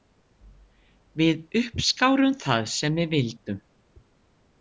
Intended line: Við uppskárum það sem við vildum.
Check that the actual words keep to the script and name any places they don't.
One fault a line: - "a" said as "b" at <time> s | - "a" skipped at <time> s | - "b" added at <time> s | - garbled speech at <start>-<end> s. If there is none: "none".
none